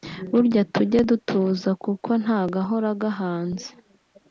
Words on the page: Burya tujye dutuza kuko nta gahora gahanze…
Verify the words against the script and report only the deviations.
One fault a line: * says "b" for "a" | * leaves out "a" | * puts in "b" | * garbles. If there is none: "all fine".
all fine